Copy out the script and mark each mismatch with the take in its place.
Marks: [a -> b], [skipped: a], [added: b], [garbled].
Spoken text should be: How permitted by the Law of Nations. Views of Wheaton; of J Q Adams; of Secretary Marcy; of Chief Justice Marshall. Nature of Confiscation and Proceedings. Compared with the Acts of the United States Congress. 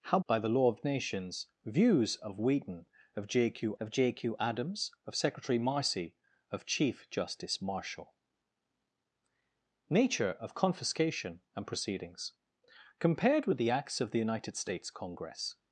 How [skipped: permitted] by the Law of Nations. Views of Wheaton; of J Q [added: of J Q] Adams; of Secretary Marcy; of Chief Justice Marshall. Nature of Confiscation and Proceedings. Compared with the Acts of the United States Congress.